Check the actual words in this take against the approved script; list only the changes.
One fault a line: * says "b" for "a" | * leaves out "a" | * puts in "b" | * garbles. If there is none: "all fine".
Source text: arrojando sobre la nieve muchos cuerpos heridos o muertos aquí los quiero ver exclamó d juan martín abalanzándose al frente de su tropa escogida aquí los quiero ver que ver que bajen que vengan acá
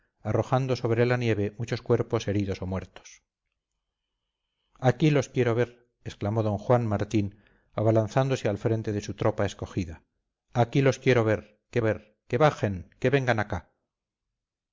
all fine